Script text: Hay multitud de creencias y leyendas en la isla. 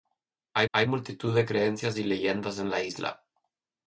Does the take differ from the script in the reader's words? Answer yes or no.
yes